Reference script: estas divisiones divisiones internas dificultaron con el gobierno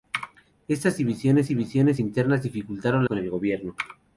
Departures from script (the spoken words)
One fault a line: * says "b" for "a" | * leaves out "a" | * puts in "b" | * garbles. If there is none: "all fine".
all fine